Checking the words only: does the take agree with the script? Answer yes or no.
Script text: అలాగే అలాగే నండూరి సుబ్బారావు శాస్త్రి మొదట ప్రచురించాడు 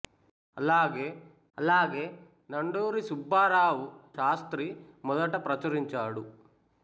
yes